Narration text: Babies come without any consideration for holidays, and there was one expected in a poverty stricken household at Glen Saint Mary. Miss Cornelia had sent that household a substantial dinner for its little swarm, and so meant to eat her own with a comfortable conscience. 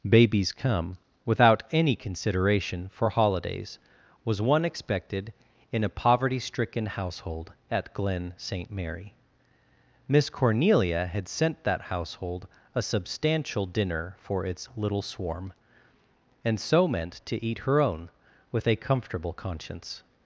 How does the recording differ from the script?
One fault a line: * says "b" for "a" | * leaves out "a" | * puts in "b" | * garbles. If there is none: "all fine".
* leaves out "and there"